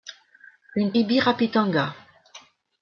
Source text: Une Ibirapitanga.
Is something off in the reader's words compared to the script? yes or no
no